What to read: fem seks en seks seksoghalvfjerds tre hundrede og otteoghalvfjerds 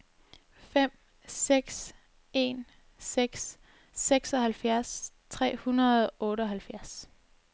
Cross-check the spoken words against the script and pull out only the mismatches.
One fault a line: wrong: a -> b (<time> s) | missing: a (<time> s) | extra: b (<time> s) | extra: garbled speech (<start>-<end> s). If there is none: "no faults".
no faults